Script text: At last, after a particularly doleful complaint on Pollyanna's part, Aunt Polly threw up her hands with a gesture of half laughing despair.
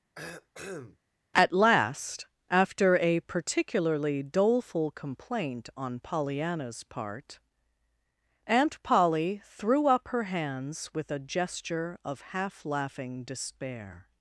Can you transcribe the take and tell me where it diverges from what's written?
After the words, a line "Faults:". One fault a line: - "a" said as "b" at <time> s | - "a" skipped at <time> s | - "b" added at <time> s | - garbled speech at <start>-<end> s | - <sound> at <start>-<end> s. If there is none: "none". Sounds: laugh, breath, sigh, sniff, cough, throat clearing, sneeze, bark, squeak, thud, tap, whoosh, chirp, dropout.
At last, after a particularly doleful complaint on Pollyanna's part, Aunt Polly threw up her hands with a gesture of half laughing despair.
Faults:
- cough at 0.2-1.0 s